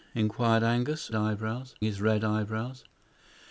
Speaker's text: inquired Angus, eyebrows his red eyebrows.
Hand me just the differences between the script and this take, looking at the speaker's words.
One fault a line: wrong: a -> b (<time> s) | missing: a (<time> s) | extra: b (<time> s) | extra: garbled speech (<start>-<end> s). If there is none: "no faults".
no faults